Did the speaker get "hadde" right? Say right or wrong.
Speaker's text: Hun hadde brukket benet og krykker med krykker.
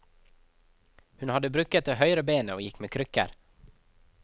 right